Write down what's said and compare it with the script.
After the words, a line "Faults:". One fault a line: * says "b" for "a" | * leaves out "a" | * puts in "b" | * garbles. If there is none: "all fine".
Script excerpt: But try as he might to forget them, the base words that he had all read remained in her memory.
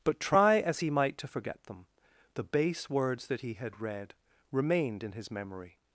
But try as he might to forget them, the base words that he had read remained in his memory.
Faults:
* leaves out "all"
* says "his" for "her"